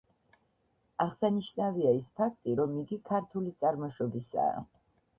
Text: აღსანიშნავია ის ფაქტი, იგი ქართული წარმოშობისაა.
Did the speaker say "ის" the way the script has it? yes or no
yes